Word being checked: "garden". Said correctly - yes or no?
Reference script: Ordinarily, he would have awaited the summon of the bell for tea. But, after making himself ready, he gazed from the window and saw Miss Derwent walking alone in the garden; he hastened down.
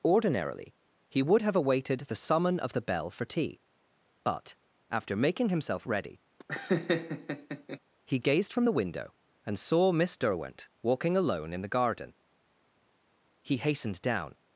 yes